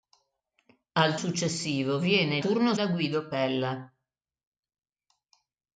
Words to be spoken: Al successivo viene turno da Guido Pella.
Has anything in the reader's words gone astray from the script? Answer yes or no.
no